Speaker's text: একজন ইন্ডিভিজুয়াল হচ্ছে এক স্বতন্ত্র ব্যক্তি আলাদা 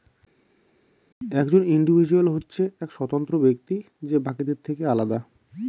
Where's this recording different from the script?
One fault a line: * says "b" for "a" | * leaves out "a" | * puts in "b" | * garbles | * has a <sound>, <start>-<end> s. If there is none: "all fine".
* puts in "যে বাকিদের থেকে"